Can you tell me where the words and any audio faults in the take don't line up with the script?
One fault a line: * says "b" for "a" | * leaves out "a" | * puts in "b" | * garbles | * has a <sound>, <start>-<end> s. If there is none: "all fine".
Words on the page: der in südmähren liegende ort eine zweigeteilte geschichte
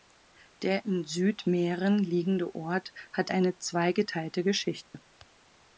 * puts in "hat"
* has a dropout, 4.8-4.9 s